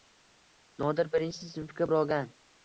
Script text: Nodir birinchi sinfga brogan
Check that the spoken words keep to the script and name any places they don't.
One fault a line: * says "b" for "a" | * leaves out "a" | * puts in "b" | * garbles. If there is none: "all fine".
all fine